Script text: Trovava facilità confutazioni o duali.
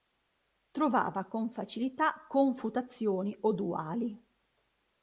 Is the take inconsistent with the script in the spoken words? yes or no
yes